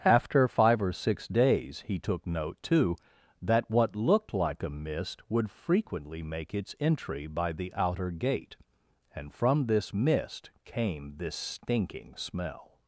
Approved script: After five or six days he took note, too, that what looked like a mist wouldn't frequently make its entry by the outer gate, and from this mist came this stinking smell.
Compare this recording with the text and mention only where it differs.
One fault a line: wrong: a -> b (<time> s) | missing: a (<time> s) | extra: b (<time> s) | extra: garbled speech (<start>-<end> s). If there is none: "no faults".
wrong: wouldn't -> would (5.3 s)